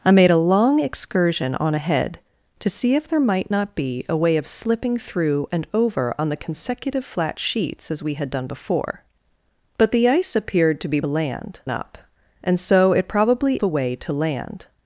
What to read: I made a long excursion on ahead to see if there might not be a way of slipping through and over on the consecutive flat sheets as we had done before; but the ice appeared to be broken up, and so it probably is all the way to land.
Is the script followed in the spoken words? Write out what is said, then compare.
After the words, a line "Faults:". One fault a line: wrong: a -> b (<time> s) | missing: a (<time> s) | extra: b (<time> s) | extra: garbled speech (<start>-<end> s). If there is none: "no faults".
I made a long excursion on ahead to see if there might not be a way of slipping through and over on the consecutive flat sheets as we had done before; but the ice appeared to be land up, and so it probably the way to land.
Faults:
wrong: broken -> land (11.1 s)
missing: is all (13.6 s)